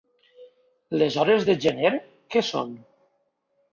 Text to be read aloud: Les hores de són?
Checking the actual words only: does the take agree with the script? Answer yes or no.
no